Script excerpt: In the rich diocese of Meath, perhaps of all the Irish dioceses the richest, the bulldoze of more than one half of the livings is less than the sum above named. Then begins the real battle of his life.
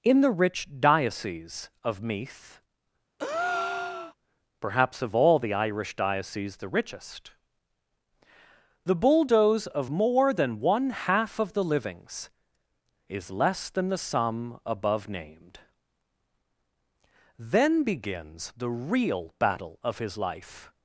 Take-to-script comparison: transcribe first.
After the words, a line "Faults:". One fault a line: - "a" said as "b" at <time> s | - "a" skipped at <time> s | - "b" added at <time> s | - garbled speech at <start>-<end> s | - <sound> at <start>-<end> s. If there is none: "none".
In the rich diocese of Meath, perhaps of all the Irish dioceses the richest, the bulldoze of more than one half of the livings is less than the sum above named. Then begins the real battle of his life.
Faults:
- breath at 3.2-4.1 s